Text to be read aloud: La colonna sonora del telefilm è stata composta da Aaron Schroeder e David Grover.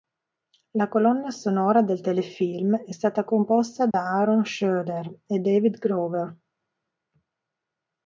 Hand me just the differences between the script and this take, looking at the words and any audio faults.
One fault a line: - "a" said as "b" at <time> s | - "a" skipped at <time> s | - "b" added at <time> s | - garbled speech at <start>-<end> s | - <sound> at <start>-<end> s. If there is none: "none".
- dropout at 3.9-3.9 s